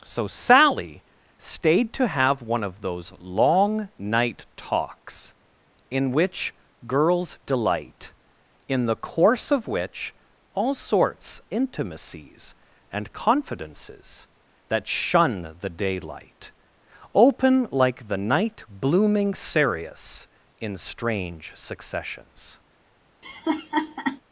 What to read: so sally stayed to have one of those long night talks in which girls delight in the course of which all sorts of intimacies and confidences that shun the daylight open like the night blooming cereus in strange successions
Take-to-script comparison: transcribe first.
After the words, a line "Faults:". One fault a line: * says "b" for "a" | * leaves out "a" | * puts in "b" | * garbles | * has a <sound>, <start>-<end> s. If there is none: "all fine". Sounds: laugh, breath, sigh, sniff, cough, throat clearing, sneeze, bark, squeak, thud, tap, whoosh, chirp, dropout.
so sally stayed to have one of those long night talks in which girls delight in the course of which all sorts intimacies and confidences that shun the daylight open like the night blooming cereus in strange successions
Faults:
* leaves out "of"
* has a laugh, 23.2-24.2 s